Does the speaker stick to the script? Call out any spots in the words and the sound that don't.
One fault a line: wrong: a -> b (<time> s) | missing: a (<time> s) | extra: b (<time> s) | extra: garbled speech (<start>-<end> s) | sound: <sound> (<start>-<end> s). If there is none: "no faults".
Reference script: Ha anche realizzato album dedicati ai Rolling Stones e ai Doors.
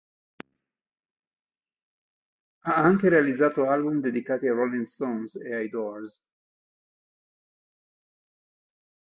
no faults